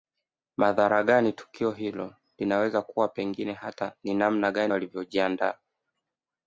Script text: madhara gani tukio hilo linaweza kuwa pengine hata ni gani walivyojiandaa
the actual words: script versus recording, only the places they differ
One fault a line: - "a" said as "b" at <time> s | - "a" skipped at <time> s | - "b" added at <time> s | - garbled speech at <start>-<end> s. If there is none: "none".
- "namna" added at 4.1 s